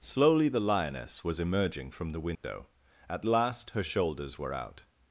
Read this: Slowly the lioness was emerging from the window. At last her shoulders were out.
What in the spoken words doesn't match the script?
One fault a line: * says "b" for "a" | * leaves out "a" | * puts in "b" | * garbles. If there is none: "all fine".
all fine